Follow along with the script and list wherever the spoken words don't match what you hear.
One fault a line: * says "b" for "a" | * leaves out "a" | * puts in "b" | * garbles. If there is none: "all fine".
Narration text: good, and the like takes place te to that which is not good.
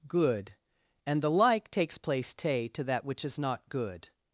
all fine